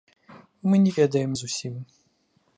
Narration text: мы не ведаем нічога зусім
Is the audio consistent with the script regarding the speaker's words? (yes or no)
no